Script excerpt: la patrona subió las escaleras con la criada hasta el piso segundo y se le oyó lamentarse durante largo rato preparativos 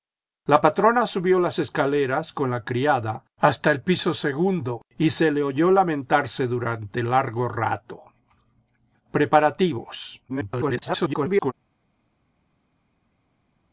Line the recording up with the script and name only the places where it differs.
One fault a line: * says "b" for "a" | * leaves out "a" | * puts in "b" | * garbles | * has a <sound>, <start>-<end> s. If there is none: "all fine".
* garbles